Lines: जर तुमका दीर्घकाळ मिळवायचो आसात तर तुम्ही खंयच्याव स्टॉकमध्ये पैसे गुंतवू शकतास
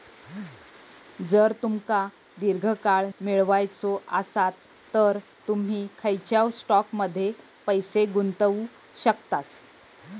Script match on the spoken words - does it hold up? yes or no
yes